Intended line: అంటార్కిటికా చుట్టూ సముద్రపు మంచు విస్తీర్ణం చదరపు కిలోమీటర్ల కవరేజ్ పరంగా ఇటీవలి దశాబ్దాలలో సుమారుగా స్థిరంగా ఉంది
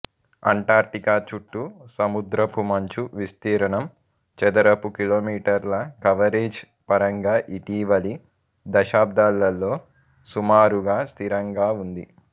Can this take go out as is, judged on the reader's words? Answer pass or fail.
pass